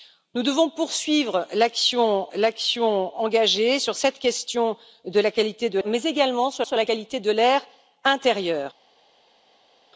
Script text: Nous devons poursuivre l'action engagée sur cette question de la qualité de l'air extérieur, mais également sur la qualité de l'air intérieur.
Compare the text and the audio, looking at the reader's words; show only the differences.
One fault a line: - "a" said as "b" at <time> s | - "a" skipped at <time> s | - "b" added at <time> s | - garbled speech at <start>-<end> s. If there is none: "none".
- "l'action" added at 2.3 s
- "l'air extérieur" skipped at 5.8 s
- "sur" added at 6.6 s